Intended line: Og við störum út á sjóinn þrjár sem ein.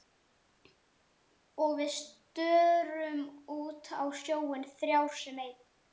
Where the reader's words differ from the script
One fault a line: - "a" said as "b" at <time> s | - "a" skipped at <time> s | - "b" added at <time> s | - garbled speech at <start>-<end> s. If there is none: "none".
none